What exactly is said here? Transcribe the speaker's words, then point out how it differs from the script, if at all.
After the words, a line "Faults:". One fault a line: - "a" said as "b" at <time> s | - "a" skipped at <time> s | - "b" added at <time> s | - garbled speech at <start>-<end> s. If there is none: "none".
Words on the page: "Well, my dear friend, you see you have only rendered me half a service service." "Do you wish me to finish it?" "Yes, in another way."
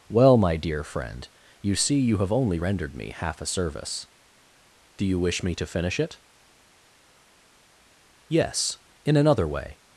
"Well, my dear friend, you see you have only rendered me half a service." "Do you wish me to finish it?" "Yes, in another way."
Faults:
- "service" skipped at 4.1 s